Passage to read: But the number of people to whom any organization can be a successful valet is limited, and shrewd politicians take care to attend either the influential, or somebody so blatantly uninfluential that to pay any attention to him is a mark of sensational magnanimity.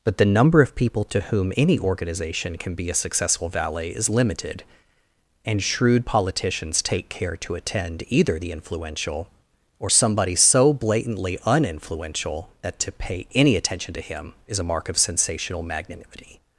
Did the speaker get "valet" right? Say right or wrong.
right